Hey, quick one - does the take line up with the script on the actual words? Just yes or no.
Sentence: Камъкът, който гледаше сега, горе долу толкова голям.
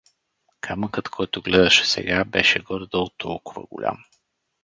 no